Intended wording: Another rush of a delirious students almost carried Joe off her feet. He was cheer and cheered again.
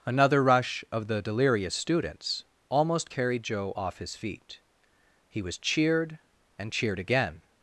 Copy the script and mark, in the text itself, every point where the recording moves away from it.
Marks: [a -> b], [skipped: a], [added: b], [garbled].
Another rush of [a -> the] delirious students almost carried Joe off [her -> his] feet. He was [cheer -> cheered] and cheered again.